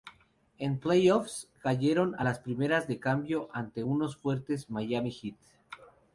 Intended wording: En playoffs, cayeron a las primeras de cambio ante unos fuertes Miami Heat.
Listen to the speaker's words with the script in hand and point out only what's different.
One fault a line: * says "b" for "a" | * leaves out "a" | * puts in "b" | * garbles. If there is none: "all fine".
all fine